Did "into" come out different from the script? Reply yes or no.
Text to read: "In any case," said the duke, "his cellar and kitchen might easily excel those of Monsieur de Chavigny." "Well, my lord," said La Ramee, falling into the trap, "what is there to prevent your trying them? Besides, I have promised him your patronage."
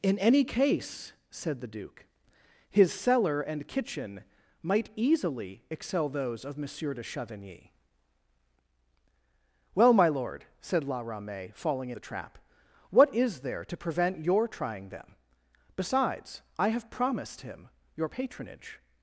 yes